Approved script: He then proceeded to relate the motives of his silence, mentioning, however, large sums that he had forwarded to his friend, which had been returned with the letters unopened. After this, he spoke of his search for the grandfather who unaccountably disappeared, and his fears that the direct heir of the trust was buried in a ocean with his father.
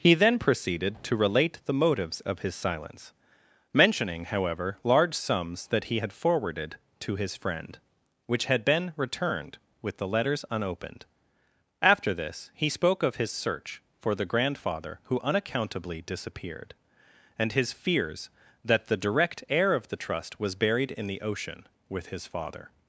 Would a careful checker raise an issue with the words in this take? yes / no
yes